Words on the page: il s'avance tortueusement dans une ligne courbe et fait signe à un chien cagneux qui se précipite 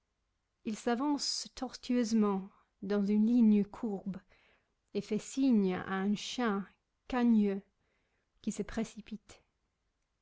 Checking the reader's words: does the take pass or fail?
pass